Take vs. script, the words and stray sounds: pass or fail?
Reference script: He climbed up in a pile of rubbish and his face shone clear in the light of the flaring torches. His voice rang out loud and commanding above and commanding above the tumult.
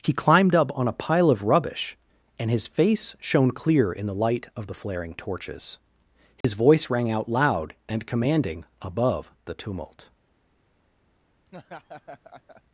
fail